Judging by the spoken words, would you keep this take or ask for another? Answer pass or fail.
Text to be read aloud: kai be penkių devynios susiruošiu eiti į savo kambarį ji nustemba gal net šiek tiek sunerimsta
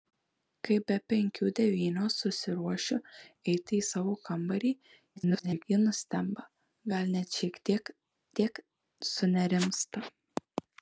fail